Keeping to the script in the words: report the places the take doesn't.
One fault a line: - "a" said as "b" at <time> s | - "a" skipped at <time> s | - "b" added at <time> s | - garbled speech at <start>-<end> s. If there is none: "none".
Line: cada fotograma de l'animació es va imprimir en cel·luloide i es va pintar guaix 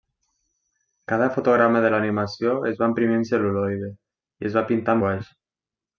none